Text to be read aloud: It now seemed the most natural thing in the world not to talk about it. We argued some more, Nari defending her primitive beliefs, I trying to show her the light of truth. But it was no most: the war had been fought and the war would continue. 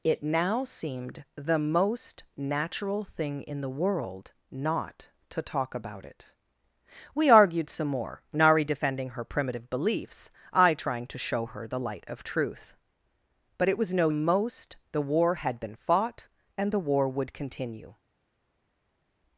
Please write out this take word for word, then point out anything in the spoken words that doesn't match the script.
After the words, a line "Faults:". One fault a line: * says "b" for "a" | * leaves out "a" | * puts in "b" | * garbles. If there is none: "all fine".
It now seemed the most natural thing in the world not to talk about it. We argued some more, Nari defending her primitive beliefs, I trying to show her the light of truth. But it was no most: the war had been fought and the war would continue.
Faults:
all fine